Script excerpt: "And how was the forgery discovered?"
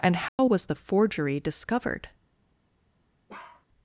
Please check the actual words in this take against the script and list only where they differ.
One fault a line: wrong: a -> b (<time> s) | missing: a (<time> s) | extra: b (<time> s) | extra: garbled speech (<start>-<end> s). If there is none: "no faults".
no faults